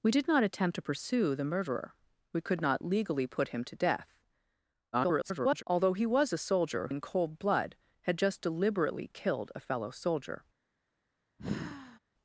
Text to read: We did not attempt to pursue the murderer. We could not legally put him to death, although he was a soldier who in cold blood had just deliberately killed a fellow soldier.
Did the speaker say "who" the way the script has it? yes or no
no